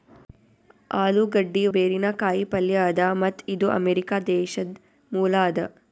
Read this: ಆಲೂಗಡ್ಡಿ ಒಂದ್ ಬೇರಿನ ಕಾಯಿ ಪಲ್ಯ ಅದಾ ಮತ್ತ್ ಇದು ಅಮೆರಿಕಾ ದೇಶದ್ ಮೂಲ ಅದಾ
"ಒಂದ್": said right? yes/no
no